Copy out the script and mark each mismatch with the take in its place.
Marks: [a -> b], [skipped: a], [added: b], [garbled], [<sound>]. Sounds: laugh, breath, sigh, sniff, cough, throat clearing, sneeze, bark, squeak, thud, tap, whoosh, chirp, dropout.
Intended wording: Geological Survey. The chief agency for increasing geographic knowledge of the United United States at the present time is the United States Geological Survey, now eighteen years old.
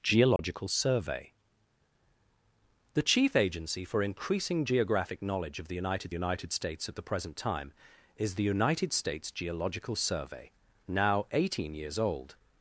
Geological [dropout] Survey. The chief agency for increasing geographic knowledge of the United United States at the present time is the United States Geological Survey, now eighteen years old.